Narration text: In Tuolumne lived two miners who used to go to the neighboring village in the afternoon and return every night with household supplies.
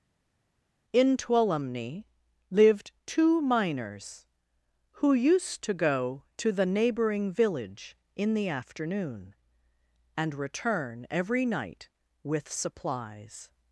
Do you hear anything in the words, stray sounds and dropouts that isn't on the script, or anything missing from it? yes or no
yes